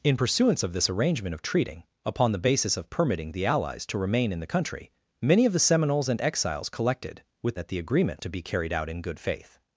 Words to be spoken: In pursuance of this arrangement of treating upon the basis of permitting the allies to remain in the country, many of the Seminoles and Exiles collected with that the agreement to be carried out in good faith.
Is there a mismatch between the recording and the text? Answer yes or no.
no